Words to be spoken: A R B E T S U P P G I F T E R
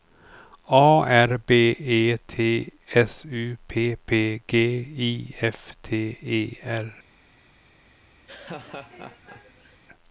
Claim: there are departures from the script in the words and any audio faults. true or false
true